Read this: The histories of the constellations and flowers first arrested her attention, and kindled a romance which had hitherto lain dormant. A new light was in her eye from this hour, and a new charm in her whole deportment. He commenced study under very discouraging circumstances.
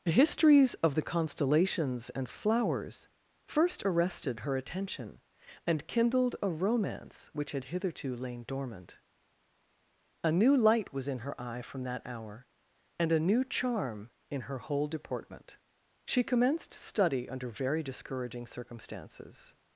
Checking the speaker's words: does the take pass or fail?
fail